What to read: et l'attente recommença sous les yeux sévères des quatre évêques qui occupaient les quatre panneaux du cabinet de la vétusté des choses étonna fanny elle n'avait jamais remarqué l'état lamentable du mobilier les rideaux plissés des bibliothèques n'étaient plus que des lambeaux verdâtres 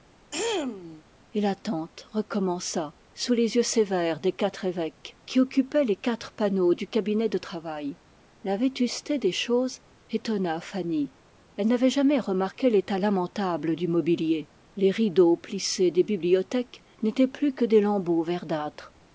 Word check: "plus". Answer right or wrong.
right